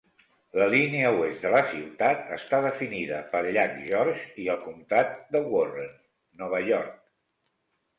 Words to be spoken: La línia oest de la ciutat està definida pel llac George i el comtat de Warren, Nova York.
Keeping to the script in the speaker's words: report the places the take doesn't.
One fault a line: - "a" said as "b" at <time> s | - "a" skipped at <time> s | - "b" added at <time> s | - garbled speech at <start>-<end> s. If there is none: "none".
none